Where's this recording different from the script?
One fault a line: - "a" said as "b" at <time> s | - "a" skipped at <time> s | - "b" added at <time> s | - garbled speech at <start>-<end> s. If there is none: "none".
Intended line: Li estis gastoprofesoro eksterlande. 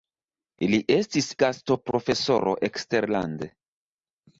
none